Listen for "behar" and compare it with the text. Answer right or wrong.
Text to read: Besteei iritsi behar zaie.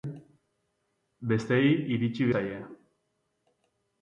wrong